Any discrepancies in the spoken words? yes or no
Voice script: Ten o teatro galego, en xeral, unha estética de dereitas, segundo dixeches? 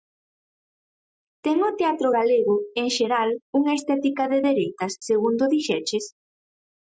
no